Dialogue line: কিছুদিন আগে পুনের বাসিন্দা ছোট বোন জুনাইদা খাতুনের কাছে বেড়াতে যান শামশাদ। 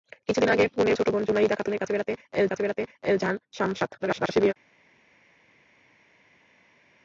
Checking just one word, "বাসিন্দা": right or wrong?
wrong